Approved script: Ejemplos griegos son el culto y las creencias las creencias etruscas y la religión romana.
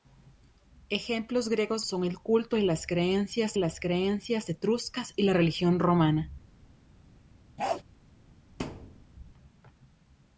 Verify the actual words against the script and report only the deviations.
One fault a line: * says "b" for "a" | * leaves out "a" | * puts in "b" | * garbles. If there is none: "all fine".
all fine